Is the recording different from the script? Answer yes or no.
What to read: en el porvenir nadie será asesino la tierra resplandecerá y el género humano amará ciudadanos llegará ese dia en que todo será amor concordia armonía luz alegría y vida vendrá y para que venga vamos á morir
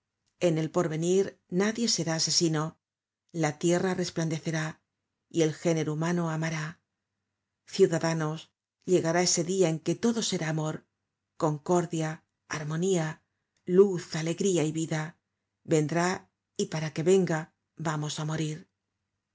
no